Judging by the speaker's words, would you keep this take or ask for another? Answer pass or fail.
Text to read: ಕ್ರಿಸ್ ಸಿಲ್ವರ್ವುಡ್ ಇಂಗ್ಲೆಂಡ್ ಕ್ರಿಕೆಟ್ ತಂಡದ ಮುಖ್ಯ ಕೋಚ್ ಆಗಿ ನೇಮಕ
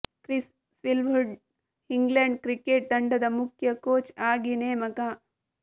pass